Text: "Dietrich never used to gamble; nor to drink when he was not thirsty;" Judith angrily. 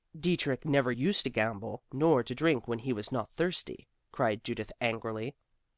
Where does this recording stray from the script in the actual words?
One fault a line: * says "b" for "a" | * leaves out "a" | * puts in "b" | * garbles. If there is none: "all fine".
* puts in "cried"